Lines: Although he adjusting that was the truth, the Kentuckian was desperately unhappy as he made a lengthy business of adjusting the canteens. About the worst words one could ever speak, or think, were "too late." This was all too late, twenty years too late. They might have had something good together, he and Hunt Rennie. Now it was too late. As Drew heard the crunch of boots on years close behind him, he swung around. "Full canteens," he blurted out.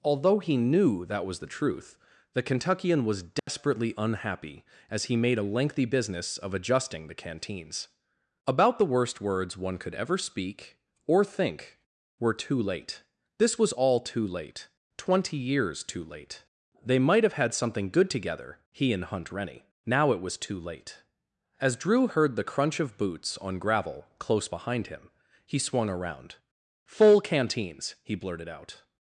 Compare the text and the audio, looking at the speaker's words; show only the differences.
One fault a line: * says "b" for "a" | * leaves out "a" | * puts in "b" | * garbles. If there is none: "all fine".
* says "knew" for "adjusting"
* says "gravel" for "years"